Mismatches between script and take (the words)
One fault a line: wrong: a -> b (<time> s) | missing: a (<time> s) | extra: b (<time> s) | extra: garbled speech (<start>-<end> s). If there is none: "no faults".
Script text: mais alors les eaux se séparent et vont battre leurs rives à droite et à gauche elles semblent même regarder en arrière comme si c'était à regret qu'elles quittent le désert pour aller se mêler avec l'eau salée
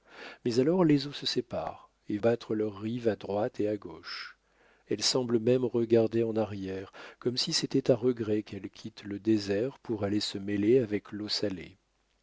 missing: vont (2.2 s)